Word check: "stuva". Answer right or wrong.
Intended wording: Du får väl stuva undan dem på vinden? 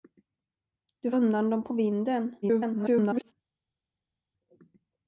wrong